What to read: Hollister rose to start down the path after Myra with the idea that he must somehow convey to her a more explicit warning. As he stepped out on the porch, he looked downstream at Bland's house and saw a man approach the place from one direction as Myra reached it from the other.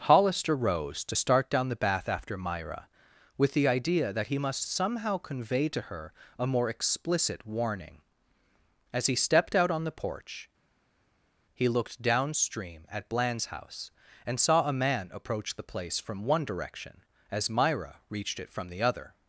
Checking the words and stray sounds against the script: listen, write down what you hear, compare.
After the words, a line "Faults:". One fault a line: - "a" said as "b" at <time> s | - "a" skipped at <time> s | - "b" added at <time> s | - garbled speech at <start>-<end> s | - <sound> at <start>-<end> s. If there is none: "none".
Hollister rose to start down the bath after Myra with the idea that he must somehow convey to her a more explicit warning. As he stepped out on the porch, he looked downstream at Bland's house and saw a man approach the place from one direction as Myra reached it from the other.
Faults:
- "path" said as "bath" at 1.8 s